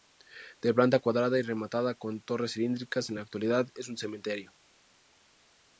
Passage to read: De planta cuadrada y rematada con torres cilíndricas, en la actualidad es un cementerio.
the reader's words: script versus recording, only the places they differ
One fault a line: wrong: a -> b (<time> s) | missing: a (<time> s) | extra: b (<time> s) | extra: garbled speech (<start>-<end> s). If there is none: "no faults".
no faults